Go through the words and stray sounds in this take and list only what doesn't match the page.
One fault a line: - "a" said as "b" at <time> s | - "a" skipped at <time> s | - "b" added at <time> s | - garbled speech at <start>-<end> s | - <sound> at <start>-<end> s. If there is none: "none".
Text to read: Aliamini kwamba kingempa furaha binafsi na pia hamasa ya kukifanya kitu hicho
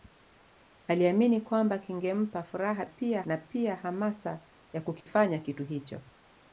- "binafsi" said as "pia" at 2.8 s
- dropout at 5.0-5.1 s